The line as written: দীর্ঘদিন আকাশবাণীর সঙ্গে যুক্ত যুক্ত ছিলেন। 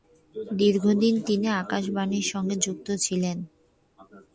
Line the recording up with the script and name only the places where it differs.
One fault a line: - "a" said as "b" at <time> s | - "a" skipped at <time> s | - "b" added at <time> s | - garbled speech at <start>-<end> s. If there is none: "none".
- "তিনি" added at 1.3 s
- "যুক্ত" skipped at 2.9 s